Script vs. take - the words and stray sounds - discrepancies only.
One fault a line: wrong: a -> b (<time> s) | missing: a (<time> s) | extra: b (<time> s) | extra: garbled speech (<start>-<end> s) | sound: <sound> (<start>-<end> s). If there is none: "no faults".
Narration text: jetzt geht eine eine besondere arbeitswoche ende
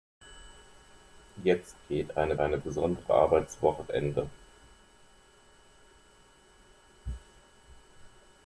no faults